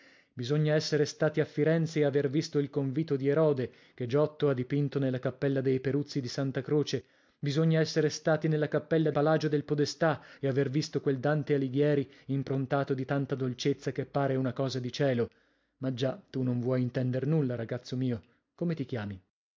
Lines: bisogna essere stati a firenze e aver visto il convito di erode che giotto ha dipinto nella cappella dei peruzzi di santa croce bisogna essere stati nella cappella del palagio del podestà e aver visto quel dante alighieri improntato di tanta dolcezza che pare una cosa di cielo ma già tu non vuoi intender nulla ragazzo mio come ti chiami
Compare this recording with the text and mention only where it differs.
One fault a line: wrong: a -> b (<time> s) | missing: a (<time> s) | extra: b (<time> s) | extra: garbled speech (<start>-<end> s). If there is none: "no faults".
missing: del (9.1 s)